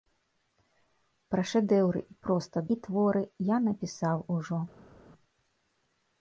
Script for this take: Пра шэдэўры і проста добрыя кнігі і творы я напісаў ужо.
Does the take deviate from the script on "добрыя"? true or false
true